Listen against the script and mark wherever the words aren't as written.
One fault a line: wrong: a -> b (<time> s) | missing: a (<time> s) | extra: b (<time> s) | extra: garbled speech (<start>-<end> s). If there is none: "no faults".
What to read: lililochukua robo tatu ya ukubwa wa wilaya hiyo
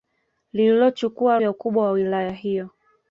missing: robo tatu (1.4 s)